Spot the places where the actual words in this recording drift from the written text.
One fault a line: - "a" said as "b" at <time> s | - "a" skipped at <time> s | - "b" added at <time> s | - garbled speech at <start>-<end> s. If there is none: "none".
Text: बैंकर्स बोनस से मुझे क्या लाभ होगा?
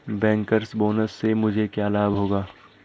none